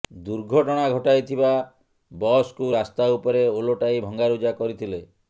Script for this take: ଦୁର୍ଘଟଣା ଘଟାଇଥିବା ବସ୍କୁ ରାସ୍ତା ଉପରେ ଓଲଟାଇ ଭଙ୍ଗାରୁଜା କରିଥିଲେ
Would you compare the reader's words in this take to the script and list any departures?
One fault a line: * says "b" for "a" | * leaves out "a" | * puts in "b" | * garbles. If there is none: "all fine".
all fine